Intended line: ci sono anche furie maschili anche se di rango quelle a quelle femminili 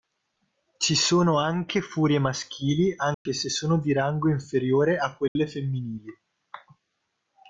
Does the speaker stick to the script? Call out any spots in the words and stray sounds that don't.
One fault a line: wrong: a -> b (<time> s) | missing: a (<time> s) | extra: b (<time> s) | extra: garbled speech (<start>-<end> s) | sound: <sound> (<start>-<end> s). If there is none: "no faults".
sound: dropout (3.1-3.3 s)
extra: sono (3.5 s)
wrong: quelle -> inferiore (4.3 s)
sound: dropout (5.3-5.4 s)